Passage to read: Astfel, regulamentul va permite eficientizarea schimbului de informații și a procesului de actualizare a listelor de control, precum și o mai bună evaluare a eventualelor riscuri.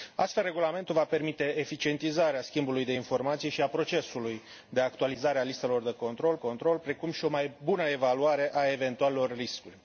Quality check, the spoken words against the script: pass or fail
fail